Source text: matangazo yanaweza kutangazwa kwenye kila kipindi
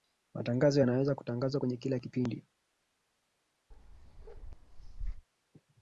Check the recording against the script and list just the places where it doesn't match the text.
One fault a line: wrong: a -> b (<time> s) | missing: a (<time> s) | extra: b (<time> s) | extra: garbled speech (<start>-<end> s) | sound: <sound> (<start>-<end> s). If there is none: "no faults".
sound: bark (3.7-5.3 s)